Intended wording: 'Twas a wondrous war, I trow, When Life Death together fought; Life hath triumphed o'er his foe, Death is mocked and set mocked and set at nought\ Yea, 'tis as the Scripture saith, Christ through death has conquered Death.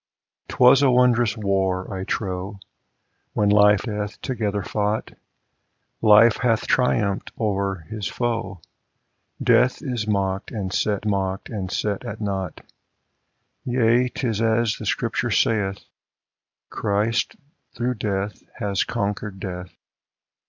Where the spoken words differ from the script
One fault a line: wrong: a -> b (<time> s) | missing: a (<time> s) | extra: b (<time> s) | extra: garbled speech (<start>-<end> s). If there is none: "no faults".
no faults